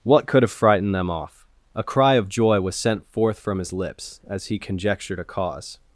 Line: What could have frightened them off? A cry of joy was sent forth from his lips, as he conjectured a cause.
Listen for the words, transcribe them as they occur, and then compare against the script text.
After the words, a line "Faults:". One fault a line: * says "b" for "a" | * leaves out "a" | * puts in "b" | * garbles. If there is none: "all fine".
What could have frightened them off? A cry of joy was sent forth from his lips, as he conjectured a cause.
Faults:
all fine